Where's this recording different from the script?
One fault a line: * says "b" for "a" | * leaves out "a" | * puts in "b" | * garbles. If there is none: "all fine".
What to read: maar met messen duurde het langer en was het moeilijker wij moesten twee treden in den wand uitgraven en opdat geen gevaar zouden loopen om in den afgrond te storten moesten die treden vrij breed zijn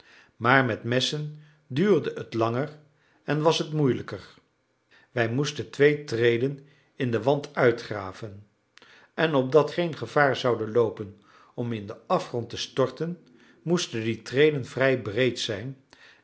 all fine